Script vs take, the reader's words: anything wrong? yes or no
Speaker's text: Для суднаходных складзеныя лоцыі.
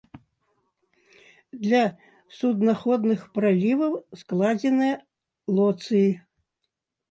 yes